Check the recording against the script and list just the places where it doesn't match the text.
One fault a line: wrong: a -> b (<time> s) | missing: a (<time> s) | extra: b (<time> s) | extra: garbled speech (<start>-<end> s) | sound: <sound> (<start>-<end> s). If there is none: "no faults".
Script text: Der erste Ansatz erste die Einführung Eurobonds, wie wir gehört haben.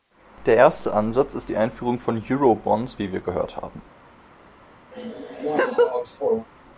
wrong: erste -> ist (1.3 s)
extra: von (2.0 s)
sound: laugh (4.9-6.5 s)